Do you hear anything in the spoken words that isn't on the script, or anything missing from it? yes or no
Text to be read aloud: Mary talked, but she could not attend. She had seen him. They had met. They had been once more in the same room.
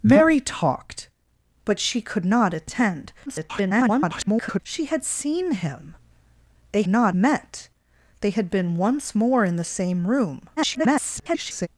yes